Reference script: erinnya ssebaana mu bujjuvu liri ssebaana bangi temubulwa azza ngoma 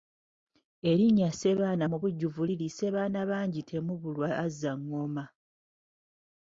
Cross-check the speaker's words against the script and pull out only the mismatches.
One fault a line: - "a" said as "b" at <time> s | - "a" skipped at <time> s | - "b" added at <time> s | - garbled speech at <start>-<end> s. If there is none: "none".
none